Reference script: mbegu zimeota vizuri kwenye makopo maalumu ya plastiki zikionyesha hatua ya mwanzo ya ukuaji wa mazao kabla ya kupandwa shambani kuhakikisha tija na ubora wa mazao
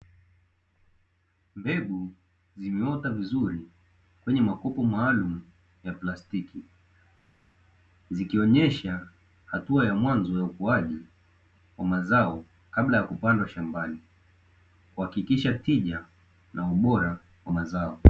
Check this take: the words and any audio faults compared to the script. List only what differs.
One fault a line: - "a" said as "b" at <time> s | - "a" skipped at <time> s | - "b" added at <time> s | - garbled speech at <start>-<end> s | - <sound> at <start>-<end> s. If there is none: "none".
none